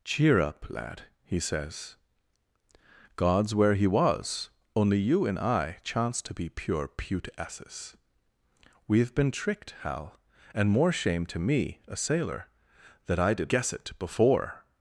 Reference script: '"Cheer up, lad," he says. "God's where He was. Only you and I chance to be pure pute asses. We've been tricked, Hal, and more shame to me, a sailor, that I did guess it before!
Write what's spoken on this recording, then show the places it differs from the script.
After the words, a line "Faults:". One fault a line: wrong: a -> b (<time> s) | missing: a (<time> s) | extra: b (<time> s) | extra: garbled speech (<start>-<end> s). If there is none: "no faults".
'"Cheer up, lad," he says. "God's where He was. Only you and I chance to be pure pute asses. We've been tricked, Hal, and more shame to me, a sailor, that I did guess it before!
Faults:
no faults